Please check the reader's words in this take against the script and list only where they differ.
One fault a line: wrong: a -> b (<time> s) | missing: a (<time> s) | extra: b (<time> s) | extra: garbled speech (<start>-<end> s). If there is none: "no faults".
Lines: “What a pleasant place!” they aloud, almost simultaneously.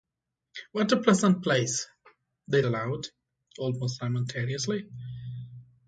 no faults